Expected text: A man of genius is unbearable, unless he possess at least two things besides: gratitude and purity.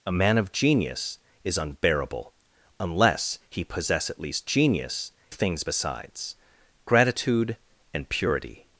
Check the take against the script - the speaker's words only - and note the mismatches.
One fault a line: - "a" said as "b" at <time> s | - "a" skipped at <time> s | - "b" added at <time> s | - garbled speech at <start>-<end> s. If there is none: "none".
- "two" said as "genius" at 4.4 s